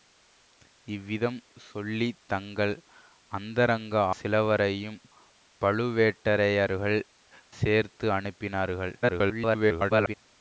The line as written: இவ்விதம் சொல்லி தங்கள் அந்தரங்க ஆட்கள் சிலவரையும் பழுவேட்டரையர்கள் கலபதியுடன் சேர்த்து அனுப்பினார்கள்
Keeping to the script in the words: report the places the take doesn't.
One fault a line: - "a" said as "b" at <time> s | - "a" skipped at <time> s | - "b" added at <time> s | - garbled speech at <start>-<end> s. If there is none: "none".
- "ஆட்கள்" skipped at 3.9 s
- "கலபதியுடன்" skipped at 7.0 s
- garbled speech at 9.0-10.2 s